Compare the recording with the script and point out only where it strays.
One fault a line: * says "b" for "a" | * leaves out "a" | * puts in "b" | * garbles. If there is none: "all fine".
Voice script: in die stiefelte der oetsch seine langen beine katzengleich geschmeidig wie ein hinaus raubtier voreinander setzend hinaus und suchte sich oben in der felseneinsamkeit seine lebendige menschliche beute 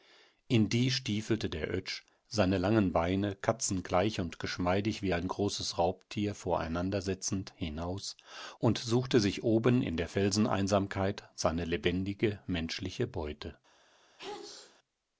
* puts in "und"
* says "großes" for "hinaus"